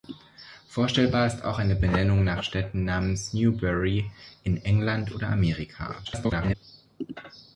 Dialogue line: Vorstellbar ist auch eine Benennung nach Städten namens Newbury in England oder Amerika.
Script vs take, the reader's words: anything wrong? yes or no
yes